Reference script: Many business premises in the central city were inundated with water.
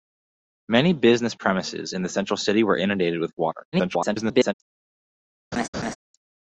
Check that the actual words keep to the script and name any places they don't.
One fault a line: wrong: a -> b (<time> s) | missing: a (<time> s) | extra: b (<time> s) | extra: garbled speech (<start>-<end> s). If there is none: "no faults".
extra: garbled speech (3.7-4.5 s)